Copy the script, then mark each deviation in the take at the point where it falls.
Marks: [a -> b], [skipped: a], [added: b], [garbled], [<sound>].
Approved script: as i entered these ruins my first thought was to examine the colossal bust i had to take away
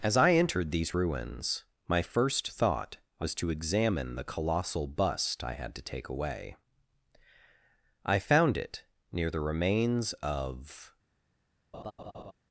as i entered these ruins my first thought was to examine the colossal bust i had to take away [added: i found it near the remains of] [laugh]